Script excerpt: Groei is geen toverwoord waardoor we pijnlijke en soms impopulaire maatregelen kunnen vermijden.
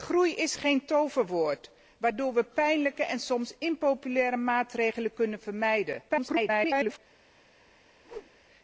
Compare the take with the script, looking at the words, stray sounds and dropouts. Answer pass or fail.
fail